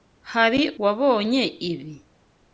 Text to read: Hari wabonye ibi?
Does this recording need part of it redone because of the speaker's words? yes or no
no